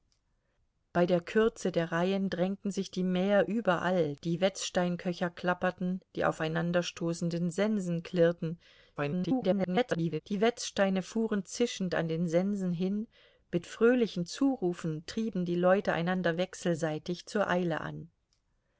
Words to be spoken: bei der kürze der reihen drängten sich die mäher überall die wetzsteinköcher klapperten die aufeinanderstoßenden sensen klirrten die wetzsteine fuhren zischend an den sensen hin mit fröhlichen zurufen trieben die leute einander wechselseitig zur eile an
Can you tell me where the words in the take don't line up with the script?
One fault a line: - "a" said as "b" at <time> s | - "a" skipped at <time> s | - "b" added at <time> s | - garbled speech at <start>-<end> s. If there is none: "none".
- garbled speech at 9.0-10.2 s